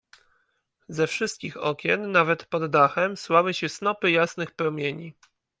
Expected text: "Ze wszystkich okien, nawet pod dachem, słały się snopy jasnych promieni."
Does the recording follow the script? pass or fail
pass